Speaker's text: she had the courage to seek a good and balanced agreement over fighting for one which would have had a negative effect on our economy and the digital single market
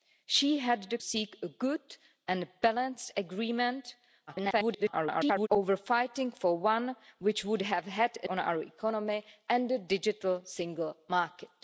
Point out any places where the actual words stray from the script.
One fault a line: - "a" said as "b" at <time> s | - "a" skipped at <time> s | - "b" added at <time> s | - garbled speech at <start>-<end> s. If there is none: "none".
- "courage to" skipped at 1.0 s
- garbled speech at 4.3-5.5 s
- "negative effect" skipped at 8.3 s